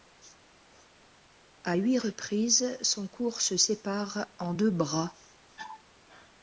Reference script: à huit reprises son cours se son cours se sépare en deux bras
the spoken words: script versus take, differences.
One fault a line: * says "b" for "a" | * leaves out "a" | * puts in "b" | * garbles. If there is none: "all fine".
* leaves out "son cours se"